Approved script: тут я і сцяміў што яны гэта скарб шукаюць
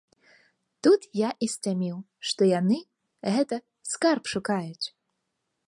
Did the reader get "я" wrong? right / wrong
right